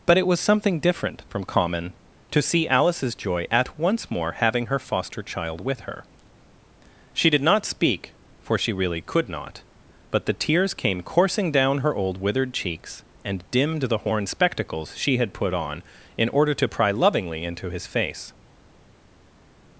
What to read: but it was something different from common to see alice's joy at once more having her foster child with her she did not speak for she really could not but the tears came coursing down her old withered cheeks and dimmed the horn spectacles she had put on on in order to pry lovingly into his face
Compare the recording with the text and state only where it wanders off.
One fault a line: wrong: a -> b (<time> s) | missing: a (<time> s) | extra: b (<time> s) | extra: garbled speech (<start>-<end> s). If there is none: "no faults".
missing: on (15.8 s)